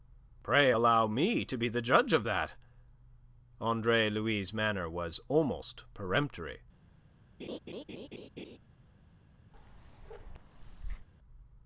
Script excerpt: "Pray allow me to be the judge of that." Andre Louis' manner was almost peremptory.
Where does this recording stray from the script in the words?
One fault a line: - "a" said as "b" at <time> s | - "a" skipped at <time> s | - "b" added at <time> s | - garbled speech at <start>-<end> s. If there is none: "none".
none